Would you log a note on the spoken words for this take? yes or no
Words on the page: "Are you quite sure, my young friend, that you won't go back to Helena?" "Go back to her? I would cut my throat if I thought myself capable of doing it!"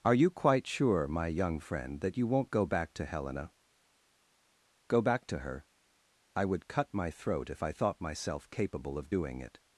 no